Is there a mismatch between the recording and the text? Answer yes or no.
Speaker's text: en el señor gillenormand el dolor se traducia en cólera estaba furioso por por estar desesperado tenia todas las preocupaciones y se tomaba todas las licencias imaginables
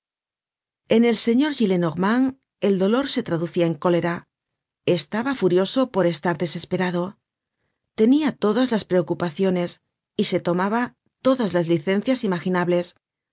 yes